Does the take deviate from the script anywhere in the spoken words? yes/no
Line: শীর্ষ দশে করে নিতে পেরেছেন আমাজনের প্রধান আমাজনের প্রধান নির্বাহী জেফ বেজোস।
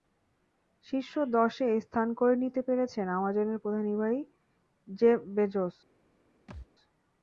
yes